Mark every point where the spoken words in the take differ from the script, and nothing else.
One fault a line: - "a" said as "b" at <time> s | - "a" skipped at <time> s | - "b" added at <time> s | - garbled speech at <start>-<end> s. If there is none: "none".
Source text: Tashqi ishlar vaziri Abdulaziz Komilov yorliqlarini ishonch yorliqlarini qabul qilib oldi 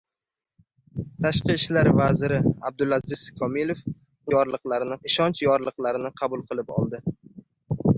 none